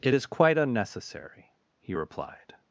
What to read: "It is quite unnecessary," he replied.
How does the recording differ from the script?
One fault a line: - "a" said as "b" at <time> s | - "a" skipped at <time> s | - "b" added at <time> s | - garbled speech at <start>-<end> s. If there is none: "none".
none